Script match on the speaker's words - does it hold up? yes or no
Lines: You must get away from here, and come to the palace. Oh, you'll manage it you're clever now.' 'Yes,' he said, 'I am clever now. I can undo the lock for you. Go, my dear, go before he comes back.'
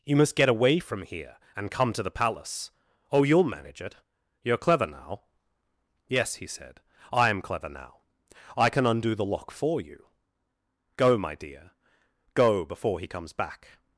yes